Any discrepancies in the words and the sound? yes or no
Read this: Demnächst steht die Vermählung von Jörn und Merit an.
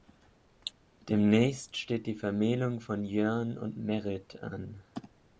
yes